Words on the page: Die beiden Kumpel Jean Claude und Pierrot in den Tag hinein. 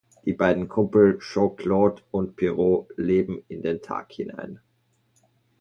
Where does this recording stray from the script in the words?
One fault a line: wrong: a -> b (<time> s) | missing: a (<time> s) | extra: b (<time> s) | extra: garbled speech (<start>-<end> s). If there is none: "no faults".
extra: leben (3.0 s)